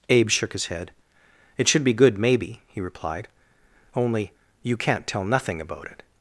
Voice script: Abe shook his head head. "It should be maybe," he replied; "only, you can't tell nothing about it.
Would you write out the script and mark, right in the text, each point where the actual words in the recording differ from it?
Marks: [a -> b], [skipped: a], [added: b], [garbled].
Abe shook his head [skipped: head.] "It should be [added: good] maybe," he replied; "only, you can't tell nothing about it.